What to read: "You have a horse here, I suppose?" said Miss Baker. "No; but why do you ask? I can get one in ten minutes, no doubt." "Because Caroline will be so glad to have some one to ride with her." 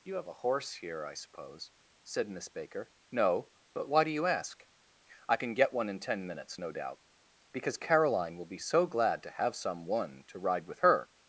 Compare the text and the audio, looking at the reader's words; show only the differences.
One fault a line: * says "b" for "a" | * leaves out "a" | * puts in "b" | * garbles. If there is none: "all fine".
all fine